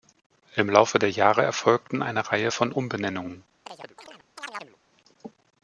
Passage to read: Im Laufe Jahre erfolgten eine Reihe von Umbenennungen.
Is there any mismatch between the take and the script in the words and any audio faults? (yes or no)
yes